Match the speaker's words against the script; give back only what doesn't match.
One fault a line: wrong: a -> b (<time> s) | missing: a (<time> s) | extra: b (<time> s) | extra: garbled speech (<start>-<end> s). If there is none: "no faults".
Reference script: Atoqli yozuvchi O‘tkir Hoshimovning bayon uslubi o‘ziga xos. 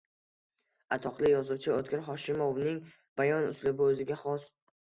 no faults